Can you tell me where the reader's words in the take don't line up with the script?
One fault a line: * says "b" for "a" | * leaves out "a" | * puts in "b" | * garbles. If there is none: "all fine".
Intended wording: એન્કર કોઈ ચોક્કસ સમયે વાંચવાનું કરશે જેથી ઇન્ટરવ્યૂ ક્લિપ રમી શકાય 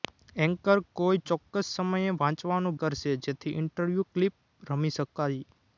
all fine